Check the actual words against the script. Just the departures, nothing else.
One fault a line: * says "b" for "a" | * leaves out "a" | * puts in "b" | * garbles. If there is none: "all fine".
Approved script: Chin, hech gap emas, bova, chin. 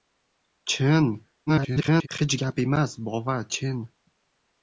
* garbles